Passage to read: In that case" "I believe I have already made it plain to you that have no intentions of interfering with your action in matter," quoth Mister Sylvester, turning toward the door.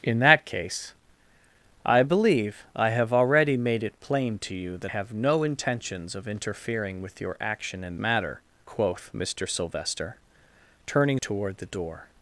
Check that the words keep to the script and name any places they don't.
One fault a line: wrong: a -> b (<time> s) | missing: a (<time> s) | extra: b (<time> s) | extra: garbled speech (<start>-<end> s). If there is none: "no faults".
no faults